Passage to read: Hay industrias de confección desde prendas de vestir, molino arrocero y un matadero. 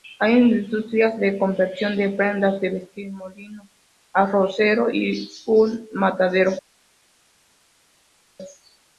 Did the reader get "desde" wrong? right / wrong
wrong